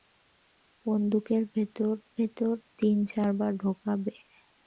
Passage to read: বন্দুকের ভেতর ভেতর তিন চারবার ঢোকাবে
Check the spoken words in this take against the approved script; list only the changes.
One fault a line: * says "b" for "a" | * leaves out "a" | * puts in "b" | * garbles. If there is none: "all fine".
all fine